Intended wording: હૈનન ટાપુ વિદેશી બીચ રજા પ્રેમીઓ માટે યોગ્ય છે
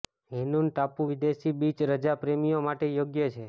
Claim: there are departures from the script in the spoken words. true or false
false